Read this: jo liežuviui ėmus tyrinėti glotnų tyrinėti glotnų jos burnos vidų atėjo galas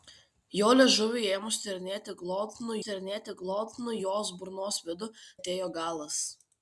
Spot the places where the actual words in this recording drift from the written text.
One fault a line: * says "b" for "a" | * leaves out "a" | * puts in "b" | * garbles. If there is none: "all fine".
all fine